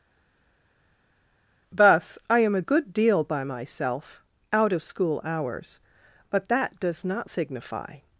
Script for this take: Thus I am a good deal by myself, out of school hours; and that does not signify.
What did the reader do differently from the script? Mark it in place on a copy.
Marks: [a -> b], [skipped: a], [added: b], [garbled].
Thus I am a good deal by myself, out of school hours; [and -> but] that does not signify.